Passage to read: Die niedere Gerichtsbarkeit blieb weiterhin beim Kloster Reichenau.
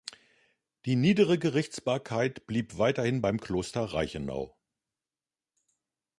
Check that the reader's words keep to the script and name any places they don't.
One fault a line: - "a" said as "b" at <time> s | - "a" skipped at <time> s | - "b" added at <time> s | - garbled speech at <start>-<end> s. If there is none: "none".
none